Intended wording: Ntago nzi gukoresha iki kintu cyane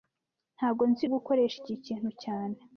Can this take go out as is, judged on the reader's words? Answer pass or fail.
pass